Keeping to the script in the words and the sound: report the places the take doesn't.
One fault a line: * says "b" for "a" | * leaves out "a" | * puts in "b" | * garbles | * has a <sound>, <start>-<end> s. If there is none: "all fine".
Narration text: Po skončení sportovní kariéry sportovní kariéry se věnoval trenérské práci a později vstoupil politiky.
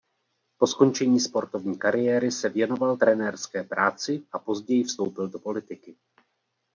* leaves out "sportovní kariéry"
* puts in "do"